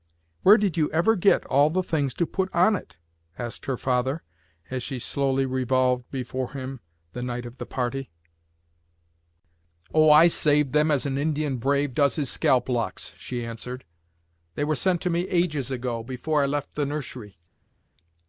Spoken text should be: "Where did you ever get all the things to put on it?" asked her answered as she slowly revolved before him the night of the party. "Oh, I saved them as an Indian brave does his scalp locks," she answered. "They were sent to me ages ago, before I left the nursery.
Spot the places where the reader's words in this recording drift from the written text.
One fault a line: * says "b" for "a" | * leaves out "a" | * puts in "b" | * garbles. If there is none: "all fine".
* says "father" for "answered"